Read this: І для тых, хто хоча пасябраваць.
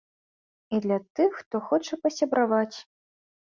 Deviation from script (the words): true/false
false